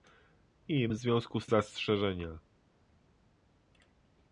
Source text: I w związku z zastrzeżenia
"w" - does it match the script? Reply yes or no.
yes